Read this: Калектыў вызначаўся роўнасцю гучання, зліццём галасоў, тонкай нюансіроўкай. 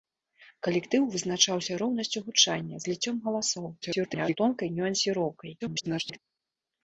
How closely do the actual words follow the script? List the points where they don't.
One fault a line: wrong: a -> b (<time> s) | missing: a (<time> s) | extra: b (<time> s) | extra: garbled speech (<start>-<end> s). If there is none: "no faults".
extra: garbled speech (3.8-4.4 s)
extra: garbled speech (5.6-6.2 s)